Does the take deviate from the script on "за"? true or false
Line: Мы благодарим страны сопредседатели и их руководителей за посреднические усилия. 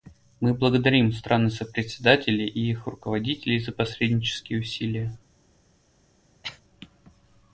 false